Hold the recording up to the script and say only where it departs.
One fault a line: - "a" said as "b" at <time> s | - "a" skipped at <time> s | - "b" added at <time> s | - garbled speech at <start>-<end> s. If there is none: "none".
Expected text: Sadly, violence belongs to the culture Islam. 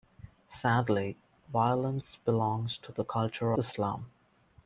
none